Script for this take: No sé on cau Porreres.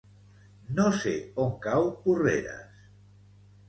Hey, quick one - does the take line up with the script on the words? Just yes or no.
yes